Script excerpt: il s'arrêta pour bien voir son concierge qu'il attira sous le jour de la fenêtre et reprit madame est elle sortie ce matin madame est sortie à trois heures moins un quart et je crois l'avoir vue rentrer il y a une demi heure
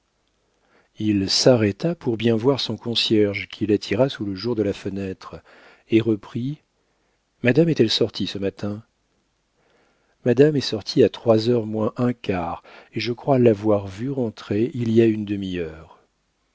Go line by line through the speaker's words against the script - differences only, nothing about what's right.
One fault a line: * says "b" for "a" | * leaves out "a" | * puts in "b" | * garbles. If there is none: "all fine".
all fine